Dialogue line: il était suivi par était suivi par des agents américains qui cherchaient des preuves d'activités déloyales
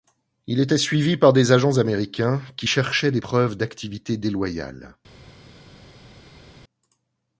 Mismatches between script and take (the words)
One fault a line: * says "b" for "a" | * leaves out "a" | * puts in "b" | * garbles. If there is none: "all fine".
* leaves out "était suivi par"